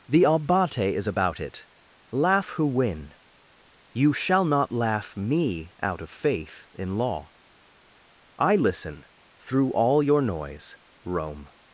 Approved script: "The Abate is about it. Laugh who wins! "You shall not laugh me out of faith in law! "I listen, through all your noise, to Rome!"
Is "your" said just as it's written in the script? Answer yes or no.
yes